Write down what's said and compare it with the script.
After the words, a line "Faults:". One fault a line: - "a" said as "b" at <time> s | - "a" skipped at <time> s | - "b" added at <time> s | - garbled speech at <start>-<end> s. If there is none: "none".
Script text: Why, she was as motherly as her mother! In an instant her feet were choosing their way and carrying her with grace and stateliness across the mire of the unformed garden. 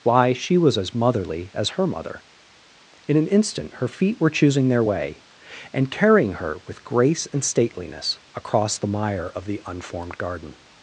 Why, she was as motherly as her mother! In an instant her feet were choosing their way and carrying her with grace and stateliness across the mire of the unformed garden.
Faults:
none